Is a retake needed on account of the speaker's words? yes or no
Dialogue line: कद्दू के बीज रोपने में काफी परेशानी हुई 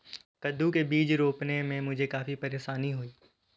yes